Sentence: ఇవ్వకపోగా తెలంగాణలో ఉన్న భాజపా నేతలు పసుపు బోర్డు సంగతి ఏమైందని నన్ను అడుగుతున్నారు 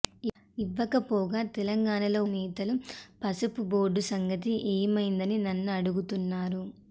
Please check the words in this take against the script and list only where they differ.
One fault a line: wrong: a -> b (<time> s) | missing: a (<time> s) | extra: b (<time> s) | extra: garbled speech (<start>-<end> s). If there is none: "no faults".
missing: ఉన్న భాజపా (2.2 s)